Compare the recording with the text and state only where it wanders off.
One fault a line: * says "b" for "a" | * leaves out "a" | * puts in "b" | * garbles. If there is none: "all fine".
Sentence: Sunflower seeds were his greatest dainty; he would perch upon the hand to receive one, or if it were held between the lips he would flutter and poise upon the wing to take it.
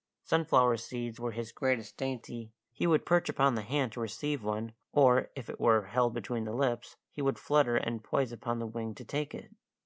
all fine